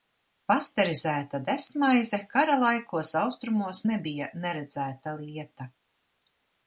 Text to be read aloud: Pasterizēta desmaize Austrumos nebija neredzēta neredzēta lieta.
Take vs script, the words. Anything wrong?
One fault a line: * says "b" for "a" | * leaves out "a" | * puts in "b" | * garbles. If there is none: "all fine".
* puts in "kara laikos"
* leaves out "neredzēta"